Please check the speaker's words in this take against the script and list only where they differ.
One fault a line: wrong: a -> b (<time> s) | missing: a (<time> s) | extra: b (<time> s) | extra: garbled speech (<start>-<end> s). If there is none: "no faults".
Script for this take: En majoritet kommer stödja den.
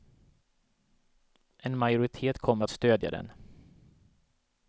extra: att (2.6 s)